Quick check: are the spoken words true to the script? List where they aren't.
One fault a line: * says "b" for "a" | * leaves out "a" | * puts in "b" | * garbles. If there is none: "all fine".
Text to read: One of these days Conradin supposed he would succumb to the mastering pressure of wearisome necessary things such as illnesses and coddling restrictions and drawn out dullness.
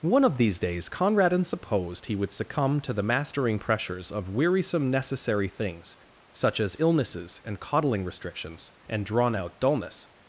* says "pressures" for "pressure"